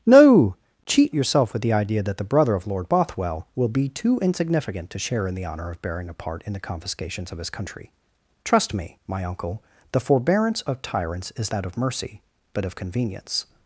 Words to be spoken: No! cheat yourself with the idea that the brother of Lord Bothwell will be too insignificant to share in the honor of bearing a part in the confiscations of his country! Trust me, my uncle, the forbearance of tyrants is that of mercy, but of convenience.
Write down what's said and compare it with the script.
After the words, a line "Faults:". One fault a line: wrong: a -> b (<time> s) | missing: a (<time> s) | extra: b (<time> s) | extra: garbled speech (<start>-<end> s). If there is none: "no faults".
No! cheat yourself with the idea that the brother of Lord Bothwell will be too insignificant to share in the honor of bearing a part in the confiscations of his country! Trust me, my uncle, the forbearance of tyrants is that of mercy, but of convenience.
Faults:
no faults